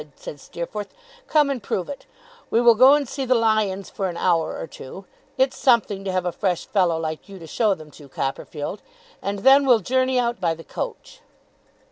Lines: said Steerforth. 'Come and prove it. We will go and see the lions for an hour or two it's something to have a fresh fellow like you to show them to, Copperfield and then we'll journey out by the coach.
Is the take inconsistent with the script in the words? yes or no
no